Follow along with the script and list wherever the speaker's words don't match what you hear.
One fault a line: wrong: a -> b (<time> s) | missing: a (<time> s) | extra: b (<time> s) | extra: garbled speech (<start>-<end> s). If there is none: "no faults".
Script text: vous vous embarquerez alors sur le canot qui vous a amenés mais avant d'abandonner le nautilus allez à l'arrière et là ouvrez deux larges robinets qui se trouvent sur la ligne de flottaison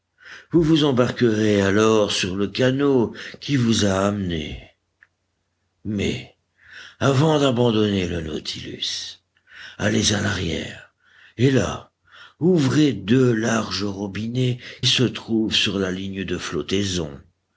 missing: qui (14.6 s)